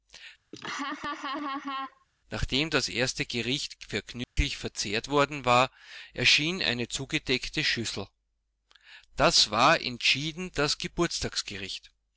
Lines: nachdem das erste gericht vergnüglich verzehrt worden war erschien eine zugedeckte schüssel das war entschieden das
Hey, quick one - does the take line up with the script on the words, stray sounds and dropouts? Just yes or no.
no